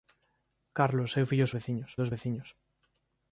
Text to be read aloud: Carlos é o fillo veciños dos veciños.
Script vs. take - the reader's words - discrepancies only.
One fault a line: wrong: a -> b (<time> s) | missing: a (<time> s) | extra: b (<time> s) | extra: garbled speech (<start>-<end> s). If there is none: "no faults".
no faults